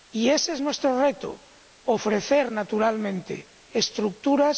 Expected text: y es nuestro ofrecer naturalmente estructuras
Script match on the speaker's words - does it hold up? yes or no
no